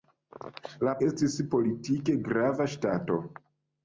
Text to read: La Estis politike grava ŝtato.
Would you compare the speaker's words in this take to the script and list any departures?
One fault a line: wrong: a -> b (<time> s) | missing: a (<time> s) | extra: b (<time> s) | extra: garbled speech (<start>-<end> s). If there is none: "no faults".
no faults